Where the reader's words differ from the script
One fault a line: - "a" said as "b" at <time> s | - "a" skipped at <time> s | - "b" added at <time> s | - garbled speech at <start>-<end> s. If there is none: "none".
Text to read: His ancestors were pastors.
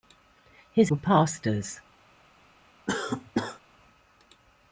- "ancestors" skipped at 0.9 s